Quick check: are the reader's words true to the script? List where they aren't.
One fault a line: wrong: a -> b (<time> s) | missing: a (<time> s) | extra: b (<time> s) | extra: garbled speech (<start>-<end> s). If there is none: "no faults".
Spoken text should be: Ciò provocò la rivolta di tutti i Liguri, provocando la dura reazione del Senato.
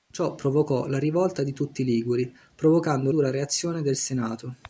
missing: la (3.1 s)